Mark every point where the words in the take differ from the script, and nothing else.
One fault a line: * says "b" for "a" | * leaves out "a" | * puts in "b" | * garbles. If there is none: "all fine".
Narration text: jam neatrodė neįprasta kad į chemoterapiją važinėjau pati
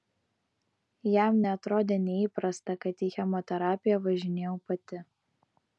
all fine